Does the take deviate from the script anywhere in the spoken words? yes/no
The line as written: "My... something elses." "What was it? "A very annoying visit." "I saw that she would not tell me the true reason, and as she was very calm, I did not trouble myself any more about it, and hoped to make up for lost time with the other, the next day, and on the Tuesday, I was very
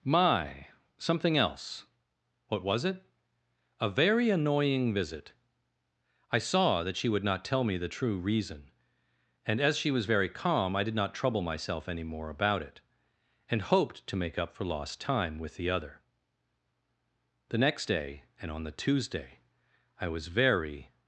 yes